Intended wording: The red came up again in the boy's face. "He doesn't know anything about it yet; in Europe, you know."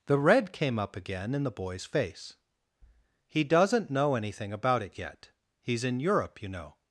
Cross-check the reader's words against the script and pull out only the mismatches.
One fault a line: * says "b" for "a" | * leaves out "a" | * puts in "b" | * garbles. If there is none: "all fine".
* puts in "he's"